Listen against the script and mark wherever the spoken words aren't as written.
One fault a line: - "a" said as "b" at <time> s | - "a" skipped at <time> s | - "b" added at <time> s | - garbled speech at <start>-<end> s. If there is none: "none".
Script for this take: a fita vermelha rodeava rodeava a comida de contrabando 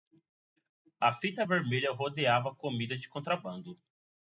- "rodeava" skipped at 2.5 s